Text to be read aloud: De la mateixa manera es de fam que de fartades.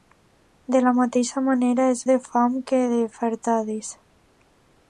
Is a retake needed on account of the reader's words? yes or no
no